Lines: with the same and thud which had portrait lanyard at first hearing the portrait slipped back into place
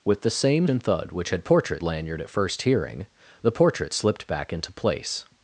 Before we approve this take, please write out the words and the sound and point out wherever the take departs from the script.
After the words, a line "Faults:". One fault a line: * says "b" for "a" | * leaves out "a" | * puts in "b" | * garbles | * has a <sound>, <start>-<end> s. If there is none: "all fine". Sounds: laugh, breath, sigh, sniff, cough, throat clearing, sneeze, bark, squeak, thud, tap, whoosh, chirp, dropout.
with the same and thud which had portrait lanyard at first hearing the portrait slipped back into place
Faults:
all fine